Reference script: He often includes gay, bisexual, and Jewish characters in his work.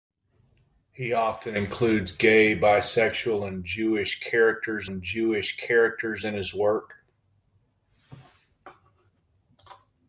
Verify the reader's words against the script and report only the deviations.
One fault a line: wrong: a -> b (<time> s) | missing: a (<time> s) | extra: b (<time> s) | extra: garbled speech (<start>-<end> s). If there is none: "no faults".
extra: and Jewish characters (4.9 s)